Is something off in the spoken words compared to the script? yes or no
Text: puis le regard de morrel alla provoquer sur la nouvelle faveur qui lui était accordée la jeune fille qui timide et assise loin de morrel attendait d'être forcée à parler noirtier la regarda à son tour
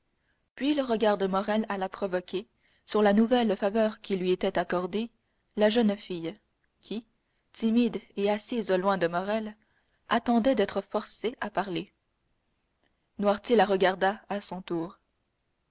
no